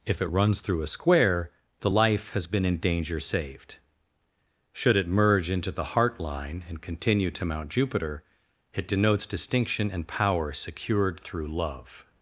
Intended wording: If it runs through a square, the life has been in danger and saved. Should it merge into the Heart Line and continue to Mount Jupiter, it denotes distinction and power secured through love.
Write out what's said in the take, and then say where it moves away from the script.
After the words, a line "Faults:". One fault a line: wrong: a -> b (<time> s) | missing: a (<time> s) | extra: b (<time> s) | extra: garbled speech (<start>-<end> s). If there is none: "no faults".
If it runs through a square, the life has been in danger saved. Should it merge into the Heart Line and continue to Mount Jupiter, it denotes distinction and power secured through love.
Faults:
missing: and (3.2 s)